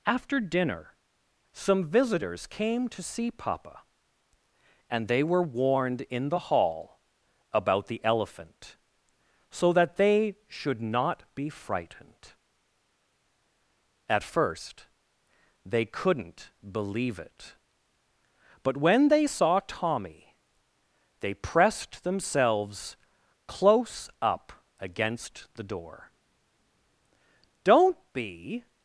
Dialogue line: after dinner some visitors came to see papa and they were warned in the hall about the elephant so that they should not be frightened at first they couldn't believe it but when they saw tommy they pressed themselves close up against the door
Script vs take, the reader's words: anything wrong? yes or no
yes